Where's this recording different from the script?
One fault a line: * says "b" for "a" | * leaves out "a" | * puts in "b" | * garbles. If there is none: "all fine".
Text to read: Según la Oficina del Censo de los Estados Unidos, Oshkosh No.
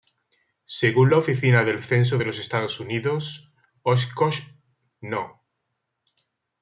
all fine